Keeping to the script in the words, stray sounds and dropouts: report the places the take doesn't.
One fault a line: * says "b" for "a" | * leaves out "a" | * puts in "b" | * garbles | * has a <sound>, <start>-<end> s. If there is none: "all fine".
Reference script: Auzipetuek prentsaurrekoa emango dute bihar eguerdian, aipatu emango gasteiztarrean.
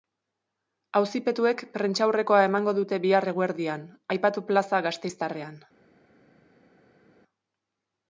* says "plaza" for "emango"